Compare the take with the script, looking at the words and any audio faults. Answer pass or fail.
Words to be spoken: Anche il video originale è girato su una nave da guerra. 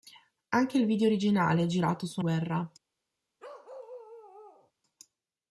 fail